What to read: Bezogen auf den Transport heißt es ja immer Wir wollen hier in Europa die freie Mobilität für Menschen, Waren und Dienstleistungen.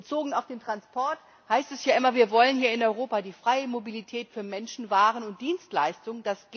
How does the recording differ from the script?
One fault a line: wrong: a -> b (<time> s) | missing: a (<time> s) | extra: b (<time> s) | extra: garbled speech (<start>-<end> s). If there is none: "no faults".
no faults